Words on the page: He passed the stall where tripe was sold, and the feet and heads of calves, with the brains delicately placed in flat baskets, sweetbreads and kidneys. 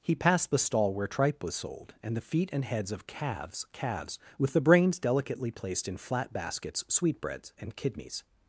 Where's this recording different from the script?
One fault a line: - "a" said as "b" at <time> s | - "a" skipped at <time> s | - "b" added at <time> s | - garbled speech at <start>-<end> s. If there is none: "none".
- "calves" added at 3.7 s